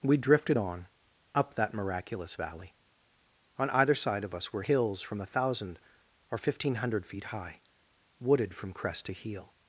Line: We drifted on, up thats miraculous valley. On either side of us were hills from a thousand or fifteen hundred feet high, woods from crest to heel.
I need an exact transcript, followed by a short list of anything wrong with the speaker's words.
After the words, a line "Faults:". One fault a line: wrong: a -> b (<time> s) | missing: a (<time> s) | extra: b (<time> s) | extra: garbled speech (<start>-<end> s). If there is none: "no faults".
We drifted on, up that miraculous valley. On either side of us were hills from a thousand or fifteen hundred feet high, wooded from crest to heel.
Faults:
wrong: thats -> that (1.6 s)
wrong: woods -> wooded (8.2 s)